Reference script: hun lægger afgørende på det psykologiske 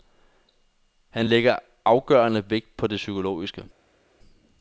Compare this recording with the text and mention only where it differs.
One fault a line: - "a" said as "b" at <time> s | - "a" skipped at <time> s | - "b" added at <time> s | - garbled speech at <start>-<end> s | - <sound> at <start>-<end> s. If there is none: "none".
- "hun" said as "han" at 1.1 s
- "vægt" added at 2.5 s